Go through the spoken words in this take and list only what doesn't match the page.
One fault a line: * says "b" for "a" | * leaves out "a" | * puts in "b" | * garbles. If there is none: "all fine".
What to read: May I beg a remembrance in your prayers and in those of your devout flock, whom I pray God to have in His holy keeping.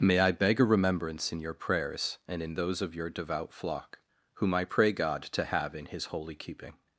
all fine